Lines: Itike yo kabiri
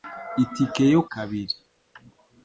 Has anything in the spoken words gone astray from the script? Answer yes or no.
no